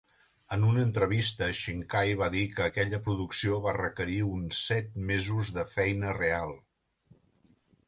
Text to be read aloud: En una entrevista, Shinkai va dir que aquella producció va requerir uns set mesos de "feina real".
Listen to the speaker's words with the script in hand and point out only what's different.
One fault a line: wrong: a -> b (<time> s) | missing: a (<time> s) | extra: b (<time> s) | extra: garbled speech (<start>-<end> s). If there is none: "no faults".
no faults